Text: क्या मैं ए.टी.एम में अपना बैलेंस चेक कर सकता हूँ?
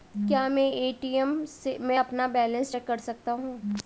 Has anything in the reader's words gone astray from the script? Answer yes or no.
no